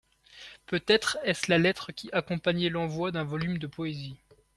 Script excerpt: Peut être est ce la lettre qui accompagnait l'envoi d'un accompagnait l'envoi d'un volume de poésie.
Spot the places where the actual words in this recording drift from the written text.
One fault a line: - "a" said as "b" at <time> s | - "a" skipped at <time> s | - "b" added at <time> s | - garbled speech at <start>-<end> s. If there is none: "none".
- "accompagnait l'envoi d'un" skipped at 3.2 s